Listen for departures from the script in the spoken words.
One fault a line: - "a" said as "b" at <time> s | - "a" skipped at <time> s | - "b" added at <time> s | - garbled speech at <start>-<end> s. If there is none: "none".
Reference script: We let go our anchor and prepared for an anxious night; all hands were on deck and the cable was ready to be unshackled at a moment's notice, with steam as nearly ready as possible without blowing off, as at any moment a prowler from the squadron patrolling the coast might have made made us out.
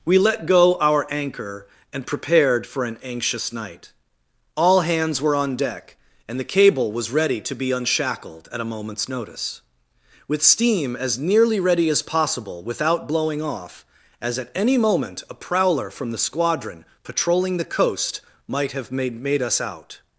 none